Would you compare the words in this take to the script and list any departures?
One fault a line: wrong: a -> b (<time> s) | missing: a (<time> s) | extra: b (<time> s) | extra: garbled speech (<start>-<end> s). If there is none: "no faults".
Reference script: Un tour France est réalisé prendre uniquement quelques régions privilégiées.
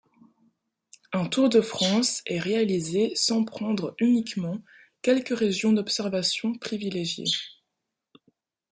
extra: de (1.5 s)
extra: sans (3.1 s)
extra: d'observation (5.7 s)